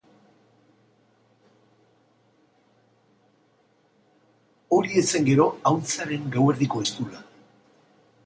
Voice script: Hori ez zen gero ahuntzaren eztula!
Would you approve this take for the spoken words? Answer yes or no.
no